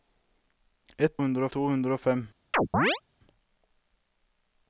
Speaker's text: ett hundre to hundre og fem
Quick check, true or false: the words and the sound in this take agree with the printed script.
false